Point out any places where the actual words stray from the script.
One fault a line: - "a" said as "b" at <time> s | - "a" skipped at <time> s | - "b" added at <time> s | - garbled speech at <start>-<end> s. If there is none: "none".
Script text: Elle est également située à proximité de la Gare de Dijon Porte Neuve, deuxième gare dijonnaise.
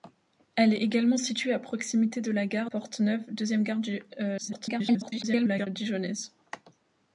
- "de Dijon" skipped at 2.7 s
- garbled speech at 4.4-5.7 s